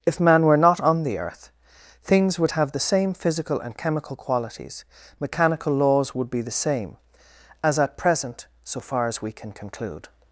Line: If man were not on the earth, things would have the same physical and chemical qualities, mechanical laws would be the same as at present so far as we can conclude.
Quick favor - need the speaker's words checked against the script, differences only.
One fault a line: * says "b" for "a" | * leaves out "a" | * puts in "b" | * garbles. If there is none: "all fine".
all fine